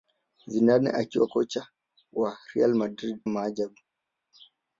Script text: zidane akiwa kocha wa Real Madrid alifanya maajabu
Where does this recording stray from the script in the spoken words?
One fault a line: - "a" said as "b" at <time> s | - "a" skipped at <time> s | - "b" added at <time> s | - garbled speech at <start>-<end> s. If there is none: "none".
- "alifanya" skipped at 3.2 s